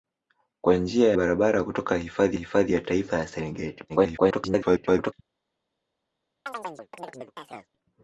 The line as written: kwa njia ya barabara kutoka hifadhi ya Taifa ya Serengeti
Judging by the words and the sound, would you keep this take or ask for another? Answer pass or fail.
fail